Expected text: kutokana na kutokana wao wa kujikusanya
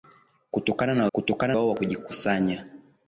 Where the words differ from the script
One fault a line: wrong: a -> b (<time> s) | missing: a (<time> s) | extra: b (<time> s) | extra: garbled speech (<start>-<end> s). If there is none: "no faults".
no faults